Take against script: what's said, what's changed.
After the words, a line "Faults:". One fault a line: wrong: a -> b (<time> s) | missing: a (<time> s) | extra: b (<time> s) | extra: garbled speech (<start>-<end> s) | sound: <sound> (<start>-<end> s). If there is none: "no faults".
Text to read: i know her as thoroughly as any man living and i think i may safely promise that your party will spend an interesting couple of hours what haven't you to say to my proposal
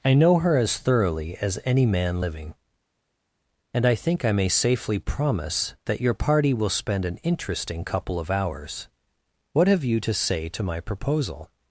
i know her as thoroughly as any man living and i think i may safely promise that your party will spend an interesting couple of hours what have you to say to my proposal
Faults:
wrong: haven't -> have (9.7 s)